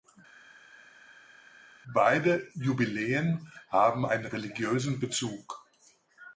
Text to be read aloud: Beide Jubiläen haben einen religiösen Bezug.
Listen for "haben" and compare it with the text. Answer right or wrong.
right